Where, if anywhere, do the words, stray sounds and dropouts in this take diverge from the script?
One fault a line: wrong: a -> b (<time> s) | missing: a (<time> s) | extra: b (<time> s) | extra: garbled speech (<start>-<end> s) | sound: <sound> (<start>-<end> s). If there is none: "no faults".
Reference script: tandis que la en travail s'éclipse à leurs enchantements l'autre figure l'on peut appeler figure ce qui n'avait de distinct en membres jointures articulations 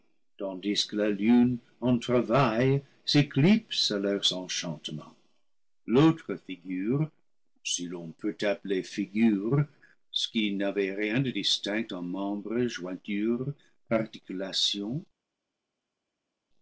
extra: lune (1.1 s)
extra: si (7.6 s)
extra: rien (10.9 s)